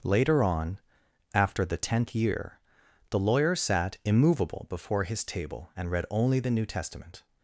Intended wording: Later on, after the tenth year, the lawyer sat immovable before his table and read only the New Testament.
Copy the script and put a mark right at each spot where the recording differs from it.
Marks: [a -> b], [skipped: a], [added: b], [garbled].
Later on, after the tenth year, the lawyer sat immovable before his table and read only the New Testament.